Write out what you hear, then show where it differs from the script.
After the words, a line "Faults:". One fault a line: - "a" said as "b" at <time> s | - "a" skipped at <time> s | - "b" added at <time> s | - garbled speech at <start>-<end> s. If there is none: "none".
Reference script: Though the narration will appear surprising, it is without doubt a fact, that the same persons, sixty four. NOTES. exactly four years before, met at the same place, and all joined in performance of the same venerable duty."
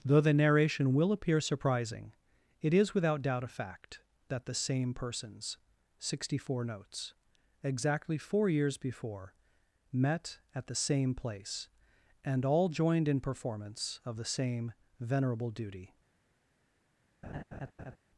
Though the narration will appear surprising, it is without doubt a fact, that the same persons, sixty four. NOTES. exactly four years before, met at the same place, and all joined in performance of the same venerable duty."
Faults:
none